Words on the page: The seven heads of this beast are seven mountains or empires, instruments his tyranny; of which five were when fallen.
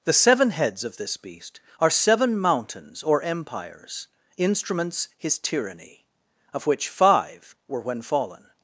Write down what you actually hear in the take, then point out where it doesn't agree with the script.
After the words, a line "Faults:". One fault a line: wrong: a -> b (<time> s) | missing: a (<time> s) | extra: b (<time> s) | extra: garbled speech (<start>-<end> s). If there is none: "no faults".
The seven heads of this beast are seven mountains or empires, instruments his tyranny; of which five were when fallen.
Faults:
no faults